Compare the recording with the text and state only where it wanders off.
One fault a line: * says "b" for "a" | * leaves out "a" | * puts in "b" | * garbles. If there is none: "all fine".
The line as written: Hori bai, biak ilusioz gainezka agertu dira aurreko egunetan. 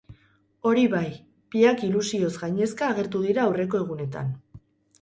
all fine